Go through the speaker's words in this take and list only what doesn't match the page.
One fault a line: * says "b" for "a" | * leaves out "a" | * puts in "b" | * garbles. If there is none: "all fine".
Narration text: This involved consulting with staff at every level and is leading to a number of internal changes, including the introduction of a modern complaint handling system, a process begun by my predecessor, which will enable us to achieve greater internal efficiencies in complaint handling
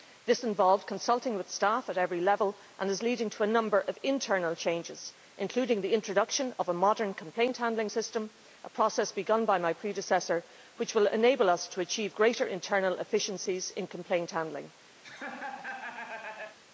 all fine